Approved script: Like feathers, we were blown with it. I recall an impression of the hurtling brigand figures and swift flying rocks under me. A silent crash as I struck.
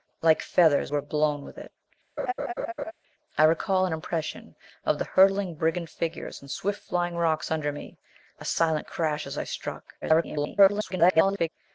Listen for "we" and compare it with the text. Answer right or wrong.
wrong